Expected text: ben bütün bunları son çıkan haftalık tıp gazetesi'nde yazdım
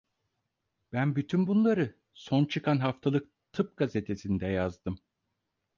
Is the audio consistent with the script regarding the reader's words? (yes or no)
yes